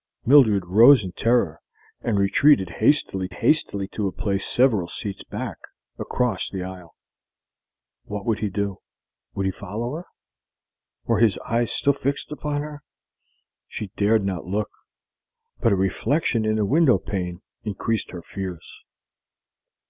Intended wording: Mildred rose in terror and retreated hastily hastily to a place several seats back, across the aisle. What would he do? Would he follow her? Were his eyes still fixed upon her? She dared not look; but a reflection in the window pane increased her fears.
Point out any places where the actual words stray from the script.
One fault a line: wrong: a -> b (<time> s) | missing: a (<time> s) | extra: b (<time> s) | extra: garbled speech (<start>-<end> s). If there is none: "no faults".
no faults